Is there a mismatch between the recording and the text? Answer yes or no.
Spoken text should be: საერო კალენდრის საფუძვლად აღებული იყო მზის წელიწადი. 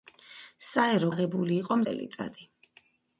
yes